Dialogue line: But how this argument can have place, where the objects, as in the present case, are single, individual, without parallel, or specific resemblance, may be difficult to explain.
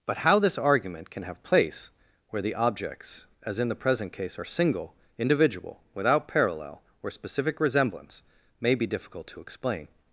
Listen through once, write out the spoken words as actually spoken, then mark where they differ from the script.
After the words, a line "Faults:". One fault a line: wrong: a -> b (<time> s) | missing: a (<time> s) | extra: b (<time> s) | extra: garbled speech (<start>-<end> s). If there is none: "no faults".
But how this argument can have place, where the objects, as in the present case, are single, individual, without parallel, or specific resemblance, may be difficult to explain.
Faults:
no faults